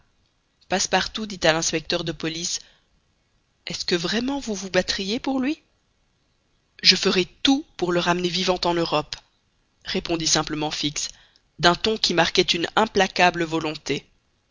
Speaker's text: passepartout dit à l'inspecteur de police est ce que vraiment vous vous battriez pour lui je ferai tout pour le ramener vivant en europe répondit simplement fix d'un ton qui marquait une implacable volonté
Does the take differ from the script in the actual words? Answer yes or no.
no